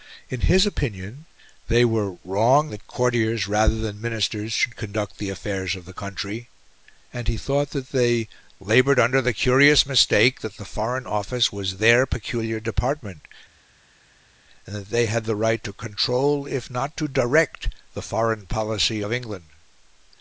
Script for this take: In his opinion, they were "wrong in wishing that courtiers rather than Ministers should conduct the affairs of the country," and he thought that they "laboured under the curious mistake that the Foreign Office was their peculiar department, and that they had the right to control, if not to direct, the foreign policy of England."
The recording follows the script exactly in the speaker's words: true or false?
false